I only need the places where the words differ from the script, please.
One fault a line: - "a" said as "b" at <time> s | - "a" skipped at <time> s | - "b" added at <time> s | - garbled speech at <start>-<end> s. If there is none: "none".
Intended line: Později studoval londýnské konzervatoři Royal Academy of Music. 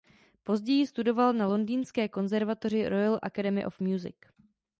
- "na" added at 1.3 s